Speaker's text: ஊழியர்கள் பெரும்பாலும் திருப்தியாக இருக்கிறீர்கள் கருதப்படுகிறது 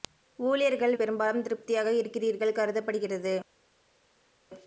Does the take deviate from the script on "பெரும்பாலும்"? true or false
false